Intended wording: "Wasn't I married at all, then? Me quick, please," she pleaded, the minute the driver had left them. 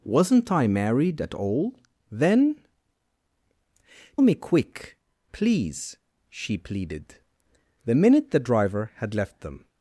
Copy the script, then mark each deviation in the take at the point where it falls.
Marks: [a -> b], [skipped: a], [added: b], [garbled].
"Wasn't I married at all, then? Me quick, please," she pleaded, the minute the driver had left them.